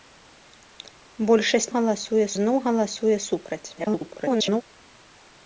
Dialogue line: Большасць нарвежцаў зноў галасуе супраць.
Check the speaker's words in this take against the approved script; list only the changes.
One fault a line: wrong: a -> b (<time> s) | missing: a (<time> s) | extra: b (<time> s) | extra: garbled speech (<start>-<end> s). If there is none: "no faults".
wrong: нарвежцаў -> галасуе (1.8 s)
extra: garbled speech (3.7-4.6 s)